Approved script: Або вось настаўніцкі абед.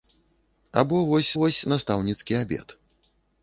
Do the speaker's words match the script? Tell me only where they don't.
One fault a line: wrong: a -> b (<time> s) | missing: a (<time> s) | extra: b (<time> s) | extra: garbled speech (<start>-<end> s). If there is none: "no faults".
extra: вось (1.4 s)